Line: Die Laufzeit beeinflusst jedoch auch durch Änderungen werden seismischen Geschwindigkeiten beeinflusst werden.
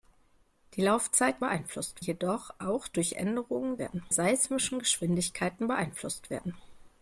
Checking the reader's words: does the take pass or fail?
pass